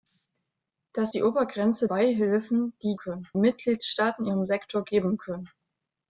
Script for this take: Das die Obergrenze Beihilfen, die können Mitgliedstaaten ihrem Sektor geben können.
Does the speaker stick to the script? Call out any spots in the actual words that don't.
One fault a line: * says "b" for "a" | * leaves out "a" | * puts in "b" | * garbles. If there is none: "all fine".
all fine